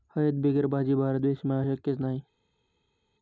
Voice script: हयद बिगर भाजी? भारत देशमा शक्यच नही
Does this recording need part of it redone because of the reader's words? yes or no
no